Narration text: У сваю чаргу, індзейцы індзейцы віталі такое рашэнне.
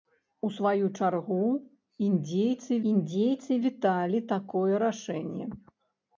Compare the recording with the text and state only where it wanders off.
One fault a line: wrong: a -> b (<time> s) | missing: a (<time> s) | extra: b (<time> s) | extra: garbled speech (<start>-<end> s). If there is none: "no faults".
no faults